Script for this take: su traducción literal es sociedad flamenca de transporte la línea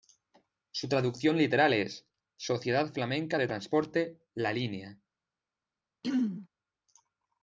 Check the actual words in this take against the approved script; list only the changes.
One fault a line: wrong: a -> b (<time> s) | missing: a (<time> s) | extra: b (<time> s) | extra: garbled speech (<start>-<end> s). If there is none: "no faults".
no faults